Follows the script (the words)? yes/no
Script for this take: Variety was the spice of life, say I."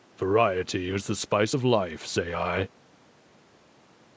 no